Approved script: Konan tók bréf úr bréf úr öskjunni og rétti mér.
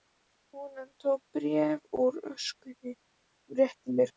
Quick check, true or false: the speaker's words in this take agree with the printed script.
false